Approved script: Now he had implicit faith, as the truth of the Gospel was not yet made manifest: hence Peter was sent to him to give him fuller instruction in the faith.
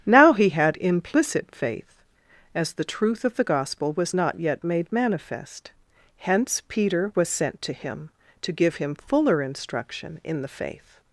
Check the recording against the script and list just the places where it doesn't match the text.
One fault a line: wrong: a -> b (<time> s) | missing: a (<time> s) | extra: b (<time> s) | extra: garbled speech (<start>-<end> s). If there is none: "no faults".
no faults